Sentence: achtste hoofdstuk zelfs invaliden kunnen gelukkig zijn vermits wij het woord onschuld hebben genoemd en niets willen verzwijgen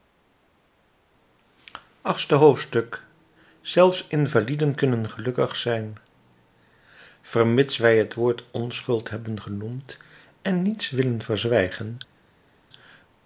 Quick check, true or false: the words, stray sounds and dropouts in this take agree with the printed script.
true